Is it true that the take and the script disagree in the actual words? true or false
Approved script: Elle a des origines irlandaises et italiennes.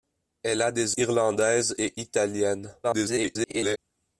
true